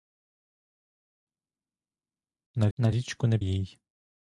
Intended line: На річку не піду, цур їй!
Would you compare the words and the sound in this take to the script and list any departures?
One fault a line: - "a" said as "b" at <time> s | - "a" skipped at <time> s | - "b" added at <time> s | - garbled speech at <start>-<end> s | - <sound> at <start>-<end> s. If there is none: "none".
- "на" added at 2.8 s
- "піду цур" skipped at 3.4 s